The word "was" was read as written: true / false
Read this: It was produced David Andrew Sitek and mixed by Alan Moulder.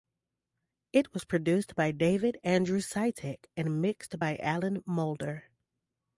true